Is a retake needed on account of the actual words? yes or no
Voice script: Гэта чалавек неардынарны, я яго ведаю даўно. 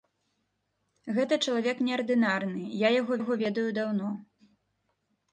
yes